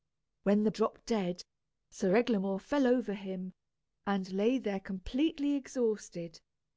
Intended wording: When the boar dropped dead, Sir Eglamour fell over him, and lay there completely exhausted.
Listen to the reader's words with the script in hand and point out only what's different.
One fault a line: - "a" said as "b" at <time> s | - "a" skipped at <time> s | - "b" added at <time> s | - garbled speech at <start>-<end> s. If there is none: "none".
- "boar" skipped at 0.7 s